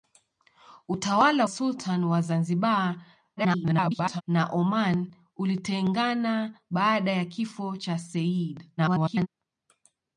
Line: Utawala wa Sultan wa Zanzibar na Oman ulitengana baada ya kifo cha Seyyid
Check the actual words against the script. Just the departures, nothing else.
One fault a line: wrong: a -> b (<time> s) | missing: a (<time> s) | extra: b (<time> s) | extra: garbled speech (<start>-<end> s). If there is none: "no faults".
missing: wa (1.4 s)
extra: garbled speech (3.4-4.2 s)
extra: garbled speech (8.8-9.3 s)